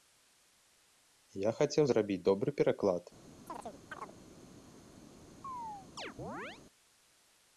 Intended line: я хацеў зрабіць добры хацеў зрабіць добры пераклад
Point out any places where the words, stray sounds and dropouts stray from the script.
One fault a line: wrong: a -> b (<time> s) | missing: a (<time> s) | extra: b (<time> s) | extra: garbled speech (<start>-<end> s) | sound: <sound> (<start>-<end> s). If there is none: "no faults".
missing: хацеў зрабіць добры (2.5 s)
sound: chirp (3.5-4.2 s)
sound: chirp (5.4-6.6 s)